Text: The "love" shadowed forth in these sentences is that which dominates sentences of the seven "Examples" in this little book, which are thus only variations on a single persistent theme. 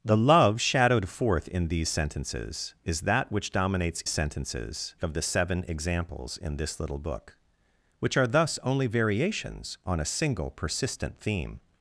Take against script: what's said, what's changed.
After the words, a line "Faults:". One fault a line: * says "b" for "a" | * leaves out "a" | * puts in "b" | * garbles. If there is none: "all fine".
The "love" shadowed forth in these sentences is that which dominates sentences of the seven "Examples" in this little book, which are thus only variations on a single persistent theme.
Faults:
all fine